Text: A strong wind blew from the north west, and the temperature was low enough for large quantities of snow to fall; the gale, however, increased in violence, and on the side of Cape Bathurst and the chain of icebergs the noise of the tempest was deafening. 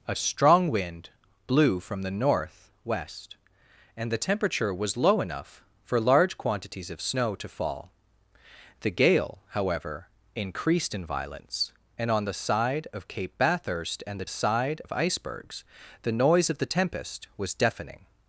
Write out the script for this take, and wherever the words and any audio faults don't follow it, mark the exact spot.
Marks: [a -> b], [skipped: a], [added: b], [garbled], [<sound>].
A strong wind blew from the north west, and the temperature was low enough for large quantities of snow to fall; the gale, however, increased in violence, and on the side of Cape Bathurst and the [chain -> side] of icebergs the noise of the tempest was deafening.